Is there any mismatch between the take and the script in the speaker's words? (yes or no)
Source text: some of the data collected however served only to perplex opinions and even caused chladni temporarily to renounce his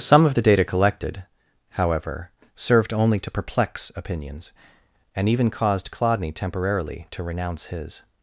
no